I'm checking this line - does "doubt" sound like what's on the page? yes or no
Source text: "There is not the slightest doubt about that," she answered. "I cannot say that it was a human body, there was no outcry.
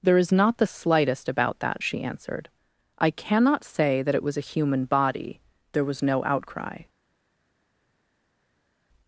no